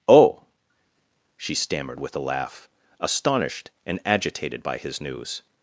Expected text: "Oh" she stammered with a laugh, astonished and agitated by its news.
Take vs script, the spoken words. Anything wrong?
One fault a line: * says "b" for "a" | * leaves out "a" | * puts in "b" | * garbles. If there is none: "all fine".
* says "his" for "its"